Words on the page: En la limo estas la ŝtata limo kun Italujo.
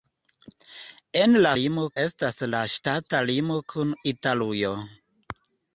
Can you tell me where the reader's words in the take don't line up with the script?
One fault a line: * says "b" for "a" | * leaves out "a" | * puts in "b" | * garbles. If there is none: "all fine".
all fine